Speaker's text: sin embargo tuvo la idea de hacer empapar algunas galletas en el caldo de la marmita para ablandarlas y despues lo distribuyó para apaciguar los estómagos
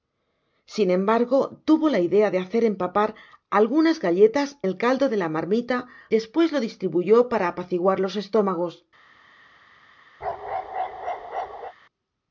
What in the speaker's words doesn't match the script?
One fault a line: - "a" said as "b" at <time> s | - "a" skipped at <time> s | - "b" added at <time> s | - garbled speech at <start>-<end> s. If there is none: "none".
- "en" skipped at 4.6 s
- "para ablandarlas y" skipped at 5.9 s